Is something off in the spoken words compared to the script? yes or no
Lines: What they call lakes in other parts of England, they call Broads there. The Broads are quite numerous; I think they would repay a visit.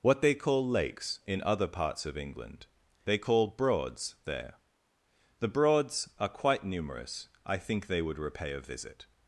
no